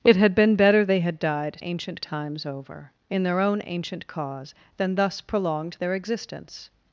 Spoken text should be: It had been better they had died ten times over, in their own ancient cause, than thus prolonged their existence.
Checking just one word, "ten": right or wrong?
wrong